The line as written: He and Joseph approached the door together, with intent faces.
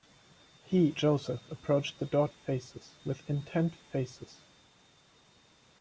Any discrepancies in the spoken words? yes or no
yes